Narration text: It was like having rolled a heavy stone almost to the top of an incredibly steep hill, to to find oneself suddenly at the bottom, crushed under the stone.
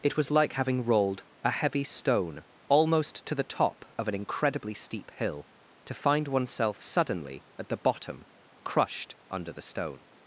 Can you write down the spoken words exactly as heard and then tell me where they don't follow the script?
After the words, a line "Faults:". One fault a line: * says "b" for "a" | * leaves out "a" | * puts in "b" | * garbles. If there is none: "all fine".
It was like having rolled a heavy stone almost to the top of an incredibly steep hill, to find oneself suddenly at the bottom, crushed under the stone.
Faults:
* leaves out "to"